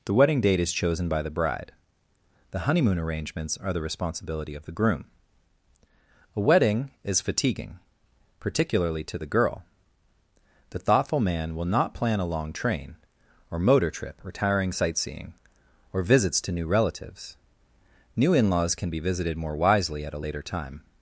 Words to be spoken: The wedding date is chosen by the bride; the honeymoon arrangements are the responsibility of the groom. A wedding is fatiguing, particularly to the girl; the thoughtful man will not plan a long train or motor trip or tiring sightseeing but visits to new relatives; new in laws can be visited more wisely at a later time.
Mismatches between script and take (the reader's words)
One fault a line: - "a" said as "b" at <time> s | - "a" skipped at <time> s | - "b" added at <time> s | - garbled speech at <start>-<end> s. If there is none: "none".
- "but" said as "or" at 15.9 s